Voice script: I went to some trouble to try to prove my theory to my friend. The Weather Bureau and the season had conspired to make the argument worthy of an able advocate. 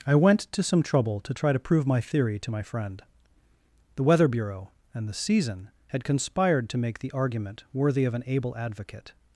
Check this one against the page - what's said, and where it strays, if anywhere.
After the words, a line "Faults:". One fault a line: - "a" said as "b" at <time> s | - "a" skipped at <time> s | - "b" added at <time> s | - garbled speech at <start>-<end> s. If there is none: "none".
I went to some trouble to try to prove my theory to my friend. The Weather Bureau and the season had conspired to make the argument worthy of an able advocate.
Faults:
none